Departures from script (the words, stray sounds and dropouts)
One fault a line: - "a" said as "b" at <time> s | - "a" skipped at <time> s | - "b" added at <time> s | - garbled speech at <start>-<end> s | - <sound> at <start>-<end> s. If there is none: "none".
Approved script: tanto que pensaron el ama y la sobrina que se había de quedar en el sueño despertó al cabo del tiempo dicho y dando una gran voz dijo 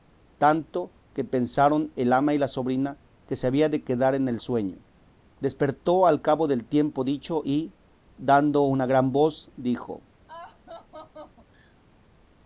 - laugh at 10.3-11.8 s